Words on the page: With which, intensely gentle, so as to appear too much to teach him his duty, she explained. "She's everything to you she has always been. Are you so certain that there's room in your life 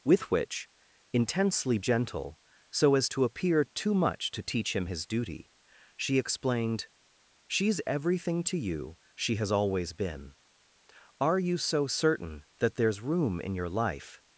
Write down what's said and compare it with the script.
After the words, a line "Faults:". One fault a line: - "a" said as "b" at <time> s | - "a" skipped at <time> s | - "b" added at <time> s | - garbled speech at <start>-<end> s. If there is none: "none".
With which, intensely gentle, so as to appear too much to teach him his duty, she explained. "She's everything to you she has always been. Are you so certain that there's room in your life
Faults:
none